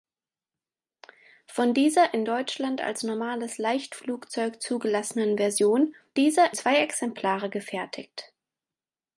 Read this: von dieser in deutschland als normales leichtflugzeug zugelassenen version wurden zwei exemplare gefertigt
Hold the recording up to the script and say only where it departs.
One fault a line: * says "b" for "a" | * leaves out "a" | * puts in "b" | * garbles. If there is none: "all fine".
* says "dieser" for "wurden"